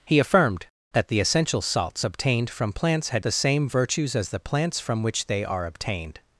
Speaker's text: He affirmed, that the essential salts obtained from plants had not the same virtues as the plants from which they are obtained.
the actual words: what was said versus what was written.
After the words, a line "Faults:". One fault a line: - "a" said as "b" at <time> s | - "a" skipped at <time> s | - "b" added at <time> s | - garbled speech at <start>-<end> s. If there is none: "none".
He affirmed, that the essential salts obtained from plants had the same virtues as the plants from which they are obtained.
Faults:
- "not" skipped at 3.2 s